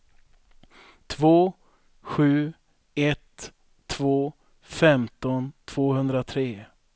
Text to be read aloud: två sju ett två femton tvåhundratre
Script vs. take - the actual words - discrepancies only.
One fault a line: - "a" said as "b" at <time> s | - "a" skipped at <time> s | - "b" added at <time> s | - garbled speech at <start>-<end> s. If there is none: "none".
none